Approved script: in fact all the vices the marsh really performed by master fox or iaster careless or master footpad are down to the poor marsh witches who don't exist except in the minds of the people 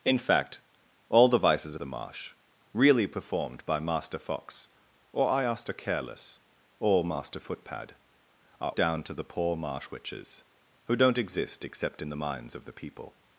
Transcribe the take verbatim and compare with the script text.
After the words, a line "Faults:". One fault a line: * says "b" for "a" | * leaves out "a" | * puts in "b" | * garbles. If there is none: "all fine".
in fact all the vices the marsh really performed by master fox or iaster careless or master footpad are down to the poor marsh witches who don't exist except in the minds of the people
Faults:
all fine